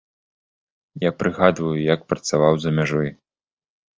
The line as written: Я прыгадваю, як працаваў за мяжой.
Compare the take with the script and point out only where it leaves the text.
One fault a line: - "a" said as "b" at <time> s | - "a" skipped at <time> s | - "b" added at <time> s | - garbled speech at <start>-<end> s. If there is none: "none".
none